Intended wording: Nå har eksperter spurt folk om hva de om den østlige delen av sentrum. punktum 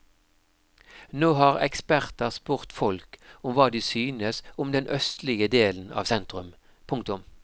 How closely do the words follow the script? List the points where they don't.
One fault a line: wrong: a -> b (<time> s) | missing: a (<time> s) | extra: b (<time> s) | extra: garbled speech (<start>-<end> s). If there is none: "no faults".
extra: synes (3.8 s)